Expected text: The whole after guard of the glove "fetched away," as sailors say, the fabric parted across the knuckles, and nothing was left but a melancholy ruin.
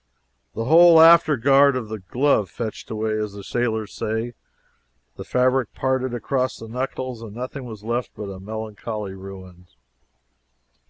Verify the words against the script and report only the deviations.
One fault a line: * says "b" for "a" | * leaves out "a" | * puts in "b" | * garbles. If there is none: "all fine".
* puts in "the"